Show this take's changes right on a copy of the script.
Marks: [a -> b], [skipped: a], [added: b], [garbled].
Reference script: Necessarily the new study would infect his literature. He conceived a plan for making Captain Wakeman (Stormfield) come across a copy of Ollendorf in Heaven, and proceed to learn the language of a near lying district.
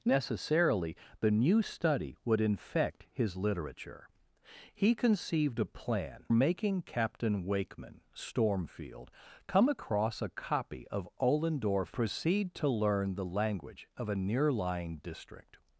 Necessarily the new study would infect his literature. He conceived a plan [skipped: for] making Captain Wakeman (Stormfield) come across a copy of Ollendorf [skipped: in Heaven, and] proceed to learn the language of a near lying district.